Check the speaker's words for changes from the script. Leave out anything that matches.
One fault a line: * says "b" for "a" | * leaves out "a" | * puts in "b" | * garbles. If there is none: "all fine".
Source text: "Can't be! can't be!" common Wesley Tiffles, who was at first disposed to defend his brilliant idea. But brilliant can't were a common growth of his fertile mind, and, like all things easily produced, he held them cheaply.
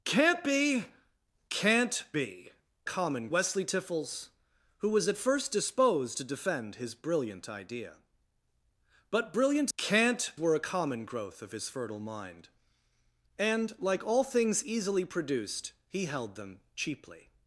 all fine